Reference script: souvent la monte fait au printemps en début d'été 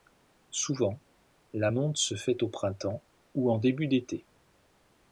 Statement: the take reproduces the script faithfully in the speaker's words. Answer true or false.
false